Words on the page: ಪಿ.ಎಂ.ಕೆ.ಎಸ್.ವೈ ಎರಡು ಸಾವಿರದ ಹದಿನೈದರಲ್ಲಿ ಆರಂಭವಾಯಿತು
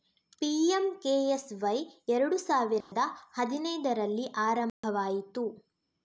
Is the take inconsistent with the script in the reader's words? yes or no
no